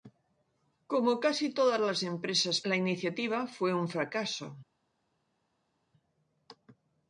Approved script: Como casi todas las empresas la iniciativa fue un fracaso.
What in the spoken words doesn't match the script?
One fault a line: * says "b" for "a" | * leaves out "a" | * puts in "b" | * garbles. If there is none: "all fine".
all fine